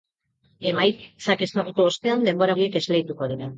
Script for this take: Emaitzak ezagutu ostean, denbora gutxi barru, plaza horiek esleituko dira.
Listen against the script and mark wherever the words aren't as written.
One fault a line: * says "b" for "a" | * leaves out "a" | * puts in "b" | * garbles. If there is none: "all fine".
* leaves out "gutxi barru plaza"